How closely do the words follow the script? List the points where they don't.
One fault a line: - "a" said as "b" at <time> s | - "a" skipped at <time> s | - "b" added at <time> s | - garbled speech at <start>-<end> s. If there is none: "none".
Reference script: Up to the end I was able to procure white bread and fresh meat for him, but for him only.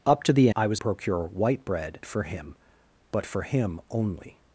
- "end" skipped at 0.5 s
- "able to" skipped at 0.8 s
- "and fresh meat" skipped at 2.0 s